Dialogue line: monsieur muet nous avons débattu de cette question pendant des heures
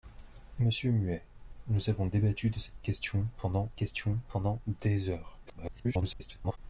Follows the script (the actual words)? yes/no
no